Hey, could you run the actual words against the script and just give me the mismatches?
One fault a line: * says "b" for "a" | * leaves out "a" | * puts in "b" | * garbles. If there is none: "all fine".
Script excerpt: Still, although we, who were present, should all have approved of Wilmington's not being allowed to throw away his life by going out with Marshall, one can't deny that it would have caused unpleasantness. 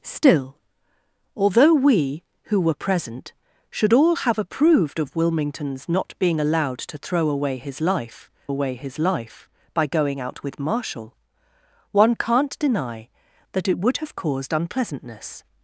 * puts in "away his life"